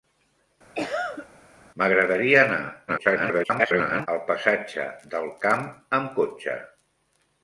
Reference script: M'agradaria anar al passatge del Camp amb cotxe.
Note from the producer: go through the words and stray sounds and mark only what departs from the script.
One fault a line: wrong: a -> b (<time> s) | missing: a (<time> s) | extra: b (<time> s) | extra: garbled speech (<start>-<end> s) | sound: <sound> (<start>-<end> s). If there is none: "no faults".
sound: cough (0.7-1.3 s)
extra: garbled speech (2.9-4.1 s)